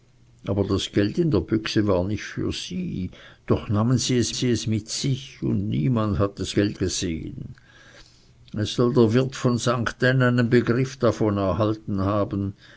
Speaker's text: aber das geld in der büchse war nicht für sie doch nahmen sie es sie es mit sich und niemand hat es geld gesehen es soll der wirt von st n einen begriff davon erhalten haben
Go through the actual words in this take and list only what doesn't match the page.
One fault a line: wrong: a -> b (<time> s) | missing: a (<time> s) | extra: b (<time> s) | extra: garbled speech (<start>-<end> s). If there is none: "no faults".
no faults